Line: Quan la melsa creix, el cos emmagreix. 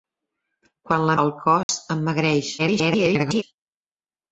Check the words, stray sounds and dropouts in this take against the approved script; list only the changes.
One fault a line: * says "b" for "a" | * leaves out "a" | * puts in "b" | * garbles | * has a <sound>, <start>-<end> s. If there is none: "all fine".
* leaves out "melsa creix"
* has a dropout, 1.6-1.7 s
* garbles